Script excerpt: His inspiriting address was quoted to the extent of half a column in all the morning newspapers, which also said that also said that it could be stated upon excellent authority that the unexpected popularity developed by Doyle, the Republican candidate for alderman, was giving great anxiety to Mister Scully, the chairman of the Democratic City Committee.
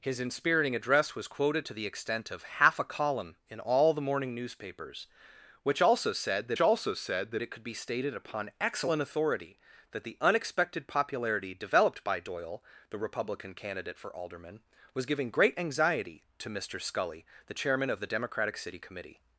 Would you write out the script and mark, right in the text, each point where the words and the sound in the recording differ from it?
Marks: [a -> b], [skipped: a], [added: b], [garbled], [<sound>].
His inspiriting address was quoted to the extent of half a column in all the morning newspapers, which also said that also said that it could be stated upon excellent authority that the unexpected popularity developed by Doyle, the Republican candidate for alderman, was giving great anxiety to Mister Scully, the chairman of the Democratic City Committee.